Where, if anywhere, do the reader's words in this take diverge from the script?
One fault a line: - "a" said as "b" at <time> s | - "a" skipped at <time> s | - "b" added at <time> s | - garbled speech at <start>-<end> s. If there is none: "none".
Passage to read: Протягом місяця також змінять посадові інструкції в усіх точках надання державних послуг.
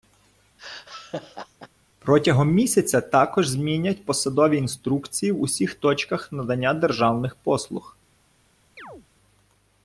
none